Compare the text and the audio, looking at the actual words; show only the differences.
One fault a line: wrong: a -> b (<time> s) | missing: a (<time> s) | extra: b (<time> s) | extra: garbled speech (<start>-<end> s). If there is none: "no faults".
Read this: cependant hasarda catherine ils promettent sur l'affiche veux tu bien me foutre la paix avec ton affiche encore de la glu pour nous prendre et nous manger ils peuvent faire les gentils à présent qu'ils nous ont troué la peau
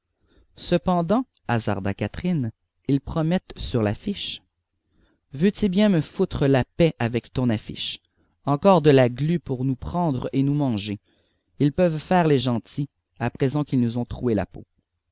no faults